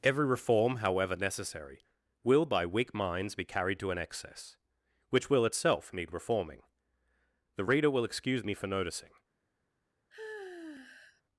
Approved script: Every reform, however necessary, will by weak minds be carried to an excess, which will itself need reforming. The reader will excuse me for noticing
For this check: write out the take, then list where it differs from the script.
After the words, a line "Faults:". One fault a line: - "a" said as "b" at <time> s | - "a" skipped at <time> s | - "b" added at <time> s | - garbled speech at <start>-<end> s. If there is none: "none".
Every reform, however necessary, will by weak minds be carried to an excess, which will itself need reforming. The reader will excuse me for noticing
Faults:
none